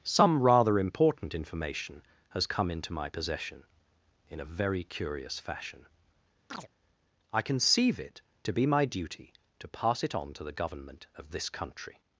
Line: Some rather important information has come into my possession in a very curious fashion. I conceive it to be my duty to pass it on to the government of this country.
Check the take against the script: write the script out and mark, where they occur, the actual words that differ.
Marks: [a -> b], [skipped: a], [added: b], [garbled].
Some rather important information has come into my possession in a very curious fashion. I conceive it to be my duty to pass it on to the government of this country.